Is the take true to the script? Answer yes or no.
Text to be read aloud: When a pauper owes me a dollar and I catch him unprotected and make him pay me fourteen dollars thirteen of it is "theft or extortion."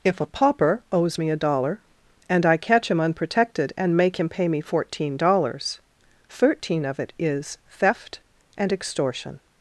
no